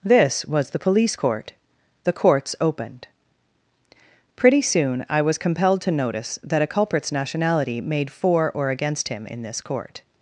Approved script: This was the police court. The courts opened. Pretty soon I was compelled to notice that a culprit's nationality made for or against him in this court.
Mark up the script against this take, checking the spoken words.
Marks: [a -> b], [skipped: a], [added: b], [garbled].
This was the police court. The courts opened. Pretty soon I was compelled to notice that a culprit's nationality made for or against him in this court.